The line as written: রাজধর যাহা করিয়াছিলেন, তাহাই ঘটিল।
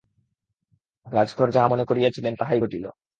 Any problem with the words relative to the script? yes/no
yes